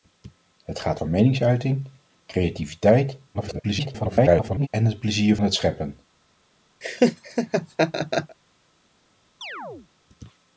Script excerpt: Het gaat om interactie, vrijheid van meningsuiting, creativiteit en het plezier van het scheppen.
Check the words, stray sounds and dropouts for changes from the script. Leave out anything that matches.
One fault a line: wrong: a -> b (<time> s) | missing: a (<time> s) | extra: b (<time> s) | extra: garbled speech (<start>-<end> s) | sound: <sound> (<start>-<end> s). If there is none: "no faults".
missing: om interactie vrijheid (1.0 s)
extra: garbled speech (3.3-4.7 s)
missing: van (5.4 s)
sound: laugh (6.8-8.4 s)
sound: chirp (9.4-9.9 s)